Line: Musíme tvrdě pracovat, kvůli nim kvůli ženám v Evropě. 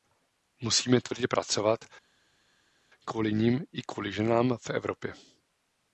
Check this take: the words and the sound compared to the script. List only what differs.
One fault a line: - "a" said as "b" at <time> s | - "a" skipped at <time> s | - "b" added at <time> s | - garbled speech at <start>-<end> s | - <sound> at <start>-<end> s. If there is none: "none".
- "i" added at 3.7 s